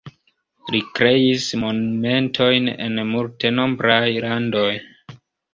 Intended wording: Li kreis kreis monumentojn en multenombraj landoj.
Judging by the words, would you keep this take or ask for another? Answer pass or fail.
fail